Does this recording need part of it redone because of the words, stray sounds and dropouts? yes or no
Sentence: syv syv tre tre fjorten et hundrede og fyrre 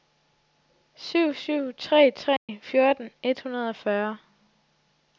yes